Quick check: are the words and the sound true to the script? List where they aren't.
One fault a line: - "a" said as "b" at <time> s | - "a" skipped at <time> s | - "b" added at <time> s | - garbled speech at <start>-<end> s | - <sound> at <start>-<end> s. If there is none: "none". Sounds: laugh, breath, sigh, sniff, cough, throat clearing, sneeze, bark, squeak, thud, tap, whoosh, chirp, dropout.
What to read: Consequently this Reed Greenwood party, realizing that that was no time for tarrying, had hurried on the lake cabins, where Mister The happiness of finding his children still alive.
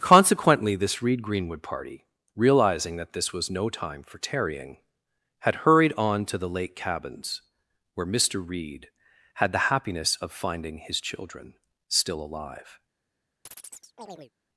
- "that" said as "this" at 3.1 s
- "to" added at 6.2 s
- "Reed had" added at 8.4 s
- chirp at 13.5-14.3 s